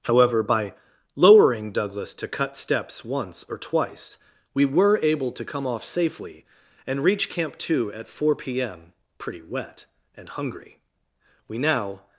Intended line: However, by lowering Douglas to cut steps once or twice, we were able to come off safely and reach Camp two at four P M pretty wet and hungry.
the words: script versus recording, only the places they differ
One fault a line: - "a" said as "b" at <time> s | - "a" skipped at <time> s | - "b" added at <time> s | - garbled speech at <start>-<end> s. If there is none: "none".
- "We now" added at 11.5 s